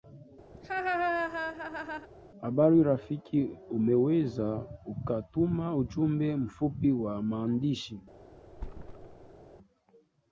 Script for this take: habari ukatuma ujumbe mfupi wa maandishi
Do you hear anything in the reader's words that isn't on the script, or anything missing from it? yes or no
yes